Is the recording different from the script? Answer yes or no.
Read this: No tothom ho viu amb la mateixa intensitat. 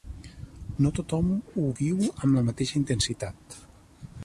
no